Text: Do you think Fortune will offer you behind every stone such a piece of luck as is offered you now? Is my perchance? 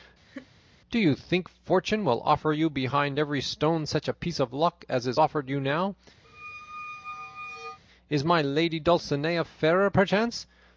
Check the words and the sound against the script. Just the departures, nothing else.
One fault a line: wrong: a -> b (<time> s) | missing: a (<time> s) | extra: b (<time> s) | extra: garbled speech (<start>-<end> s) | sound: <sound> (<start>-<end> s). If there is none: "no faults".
sound: laugh (0.3-0.5 s)
sound: squeak (6.2-7.8 s)
extra: lady Dulcinea fairer (8.4 s)